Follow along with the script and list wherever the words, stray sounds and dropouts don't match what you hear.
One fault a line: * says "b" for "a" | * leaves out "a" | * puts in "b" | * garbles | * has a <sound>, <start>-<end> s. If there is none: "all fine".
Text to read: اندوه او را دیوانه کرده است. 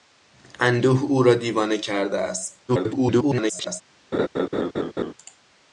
* garbles
* has a laugh, 4.1-5.1 s